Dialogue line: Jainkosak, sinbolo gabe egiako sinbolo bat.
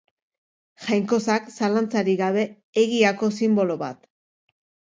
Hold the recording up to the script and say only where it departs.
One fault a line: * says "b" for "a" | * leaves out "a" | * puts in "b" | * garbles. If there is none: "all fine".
* says "zalantzarik" for "sinbolo"